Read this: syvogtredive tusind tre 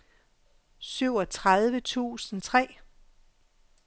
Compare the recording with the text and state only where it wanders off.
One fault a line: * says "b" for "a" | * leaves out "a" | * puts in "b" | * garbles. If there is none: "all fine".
all fine